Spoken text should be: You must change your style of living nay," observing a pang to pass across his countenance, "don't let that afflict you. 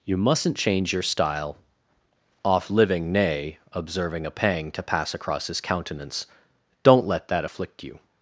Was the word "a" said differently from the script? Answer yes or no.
no